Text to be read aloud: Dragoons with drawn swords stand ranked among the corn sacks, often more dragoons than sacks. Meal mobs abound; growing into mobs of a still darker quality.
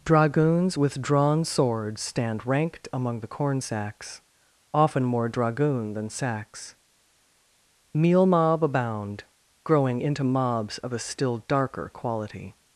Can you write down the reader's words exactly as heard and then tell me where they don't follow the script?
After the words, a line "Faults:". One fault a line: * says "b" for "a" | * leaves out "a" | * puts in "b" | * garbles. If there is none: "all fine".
Dragoons with drawn swords stand ranked among the corn sacks, often more dragoon than sacks. Meal mob abound; growing into mobs of a still darker quality.
Faults:
* says "dragoon" for "dragoons"
* says "mob" for "mobs"